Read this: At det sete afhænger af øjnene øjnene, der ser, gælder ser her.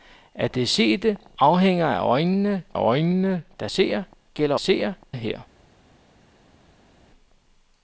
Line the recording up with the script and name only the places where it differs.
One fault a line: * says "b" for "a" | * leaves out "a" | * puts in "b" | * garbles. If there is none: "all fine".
all fine